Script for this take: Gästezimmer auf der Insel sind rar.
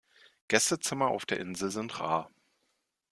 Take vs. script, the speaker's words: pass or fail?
pass